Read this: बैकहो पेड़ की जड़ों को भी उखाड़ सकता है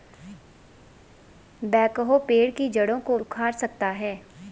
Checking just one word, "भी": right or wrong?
wrong